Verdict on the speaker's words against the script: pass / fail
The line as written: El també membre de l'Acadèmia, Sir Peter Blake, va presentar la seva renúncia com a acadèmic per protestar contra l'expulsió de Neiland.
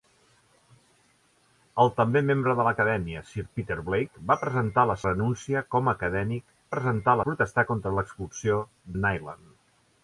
fail